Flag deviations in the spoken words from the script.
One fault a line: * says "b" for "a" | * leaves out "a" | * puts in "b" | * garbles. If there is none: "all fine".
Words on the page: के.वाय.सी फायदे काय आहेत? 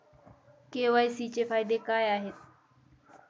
* puts in "चे"